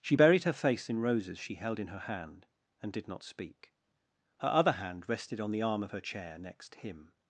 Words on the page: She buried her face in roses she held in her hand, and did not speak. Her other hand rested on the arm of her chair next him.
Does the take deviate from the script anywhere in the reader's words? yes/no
no